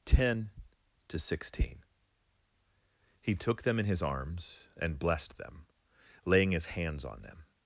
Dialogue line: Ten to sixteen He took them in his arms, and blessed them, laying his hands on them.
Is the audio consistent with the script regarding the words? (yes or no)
yes